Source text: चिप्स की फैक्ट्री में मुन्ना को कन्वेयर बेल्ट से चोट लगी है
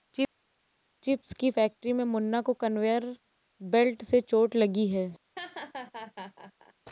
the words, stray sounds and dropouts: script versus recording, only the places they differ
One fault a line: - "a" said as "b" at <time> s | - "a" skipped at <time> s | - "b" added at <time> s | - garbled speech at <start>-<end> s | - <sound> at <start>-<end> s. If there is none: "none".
- laugh at 5.4-6.7 s